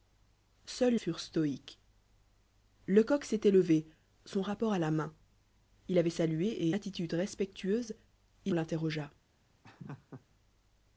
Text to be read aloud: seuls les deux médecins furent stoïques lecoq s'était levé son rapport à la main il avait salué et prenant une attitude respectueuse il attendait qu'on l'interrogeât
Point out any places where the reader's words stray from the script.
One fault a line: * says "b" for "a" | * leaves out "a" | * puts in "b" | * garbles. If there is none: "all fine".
* leaves out "les deux médecins"
* leaves out "et prenant une"
* leaves out "attendait qu'on"